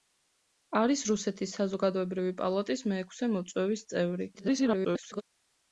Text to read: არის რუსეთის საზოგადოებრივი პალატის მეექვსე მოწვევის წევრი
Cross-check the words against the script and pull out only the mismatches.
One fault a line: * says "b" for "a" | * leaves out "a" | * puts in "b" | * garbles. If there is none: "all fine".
* garbles